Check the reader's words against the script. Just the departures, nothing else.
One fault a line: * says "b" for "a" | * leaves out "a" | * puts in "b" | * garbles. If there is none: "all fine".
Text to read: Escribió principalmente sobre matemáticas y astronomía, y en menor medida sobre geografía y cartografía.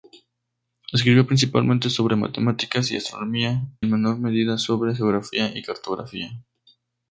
* leaves out "y"